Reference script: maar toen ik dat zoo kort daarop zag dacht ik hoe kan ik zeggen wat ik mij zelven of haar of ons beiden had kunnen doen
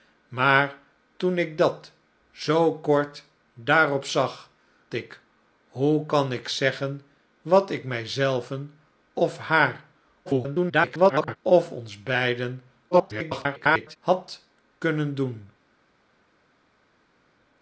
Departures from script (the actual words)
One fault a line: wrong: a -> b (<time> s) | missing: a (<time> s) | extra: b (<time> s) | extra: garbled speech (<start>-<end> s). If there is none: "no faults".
missing: dacht (4.5 s)
extra: garbled speech (10.3-11.4 s)
extra: garbled speech (12.9-14.0 s)